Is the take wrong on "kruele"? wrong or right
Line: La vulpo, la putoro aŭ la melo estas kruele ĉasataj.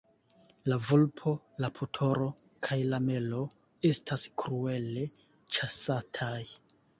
right